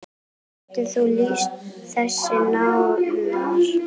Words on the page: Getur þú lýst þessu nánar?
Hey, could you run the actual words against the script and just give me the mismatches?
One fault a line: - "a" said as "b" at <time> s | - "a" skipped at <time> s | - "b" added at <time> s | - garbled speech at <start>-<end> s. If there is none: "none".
none